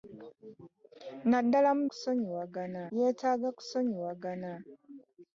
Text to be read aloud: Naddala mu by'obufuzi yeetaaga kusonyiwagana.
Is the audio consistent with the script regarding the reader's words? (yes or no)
no